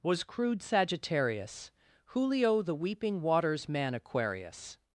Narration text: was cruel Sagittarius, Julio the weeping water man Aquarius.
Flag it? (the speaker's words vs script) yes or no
yes